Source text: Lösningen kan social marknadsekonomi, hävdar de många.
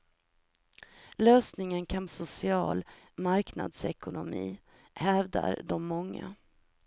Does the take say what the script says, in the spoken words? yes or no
yes